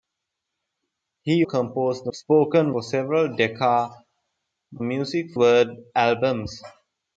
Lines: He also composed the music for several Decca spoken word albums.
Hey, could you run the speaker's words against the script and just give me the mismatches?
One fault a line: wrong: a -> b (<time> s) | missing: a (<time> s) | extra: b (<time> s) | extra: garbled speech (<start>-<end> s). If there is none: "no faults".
missing: also (1.4 s)
wrong: music -> spoken (2.1 s)
wrong: spoken -> music (4.8 s)